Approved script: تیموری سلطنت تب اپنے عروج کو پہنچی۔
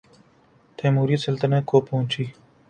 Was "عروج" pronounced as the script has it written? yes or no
no